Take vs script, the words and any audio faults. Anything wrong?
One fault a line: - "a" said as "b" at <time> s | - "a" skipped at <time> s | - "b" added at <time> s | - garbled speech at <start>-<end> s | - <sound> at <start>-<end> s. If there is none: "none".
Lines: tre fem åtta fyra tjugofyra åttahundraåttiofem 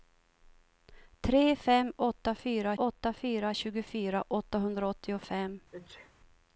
- "åtta fyra" added at 2.8 s
- sneeze at 5.7-6.1 s